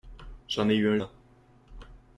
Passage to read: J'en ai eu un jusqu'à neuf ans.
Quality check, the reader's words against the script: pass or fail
fail